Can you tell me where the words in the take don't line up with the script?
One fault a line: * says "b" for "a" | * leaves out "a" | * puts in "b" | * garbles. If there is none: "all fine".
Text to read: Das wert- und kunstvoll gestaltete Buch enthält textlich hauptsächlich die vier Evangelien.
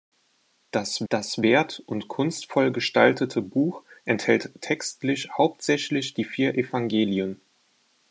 * puts in "das"